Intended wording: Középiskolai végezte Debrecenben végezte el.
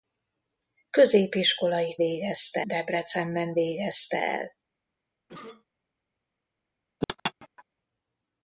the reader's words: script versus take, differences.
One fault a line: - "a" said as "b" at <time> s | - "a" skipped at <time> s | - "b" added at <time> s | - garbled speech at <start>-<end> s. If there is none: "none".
none